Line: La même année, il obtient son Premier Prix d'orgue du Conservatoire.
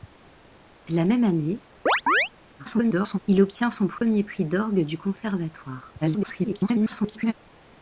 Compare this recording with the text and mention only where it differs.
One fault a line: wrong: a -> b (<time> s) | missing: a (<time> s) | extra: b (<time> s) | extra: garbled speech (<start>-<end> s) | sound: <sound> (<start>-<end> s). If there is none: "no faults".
sound: chirp (1.9-2.3 s)
extra: garbled speech (2.6-3.2 s)
sound: dropout (4.0-4.0 s)
extra: garbled speech (6.0-7.3 s)